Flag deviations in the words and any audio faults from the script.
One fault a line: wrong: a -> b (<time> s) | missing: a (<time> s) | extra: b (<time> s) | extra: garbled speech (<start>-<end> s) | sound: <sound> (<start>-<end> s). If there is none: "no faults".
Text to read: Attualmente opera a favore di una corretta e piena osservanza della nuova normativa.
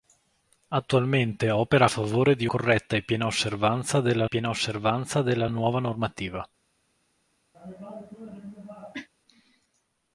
missing: una (2.5 s)
extra: piena osservanza della (4.2 s)
sound: cough (7.5-9.1 s)